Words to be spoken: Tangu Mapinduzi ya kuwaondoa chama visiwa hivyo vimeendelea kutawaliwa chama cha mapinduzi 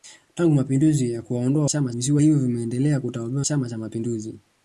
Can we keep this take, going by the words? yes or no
yes